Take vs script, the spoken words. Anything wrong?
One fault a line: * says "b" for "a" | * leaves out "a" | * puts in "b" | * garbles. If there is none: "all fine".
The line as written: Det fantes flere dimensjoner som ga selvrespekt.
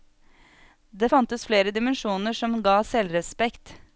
all fine